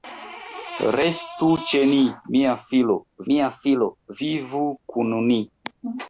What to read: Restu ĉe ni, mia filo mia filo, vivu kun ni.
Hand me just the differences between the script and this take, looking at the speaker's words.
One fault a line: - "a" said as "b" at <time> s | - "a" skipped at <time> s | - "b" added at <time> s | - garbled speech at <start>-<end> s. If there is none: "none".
none